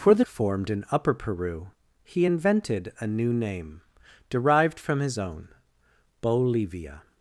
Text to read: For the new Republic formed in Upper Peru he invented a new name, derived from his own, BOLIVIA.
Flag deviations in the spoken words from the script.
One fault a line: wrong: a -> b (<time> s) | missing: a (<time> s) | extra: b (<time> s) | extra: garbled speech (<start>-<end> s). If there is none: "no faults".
missing: new Republic (0.2 s)